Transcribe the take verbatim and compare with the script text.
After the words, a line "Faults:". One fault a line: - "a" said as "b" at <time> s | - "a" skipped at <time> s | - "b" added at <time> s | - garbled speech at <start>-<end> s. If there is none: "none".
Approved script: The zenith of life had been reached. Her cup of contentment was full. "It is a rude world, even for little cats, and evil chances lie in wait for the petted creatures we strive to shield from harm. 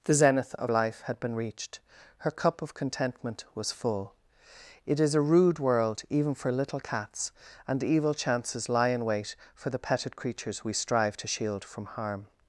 The zenith of life had been reached. Her cup of contentment was full. "It is a rude world, even for little cats, and evil chances lie in wait for the petted creatures we strive to shield from harm.
Faults:
none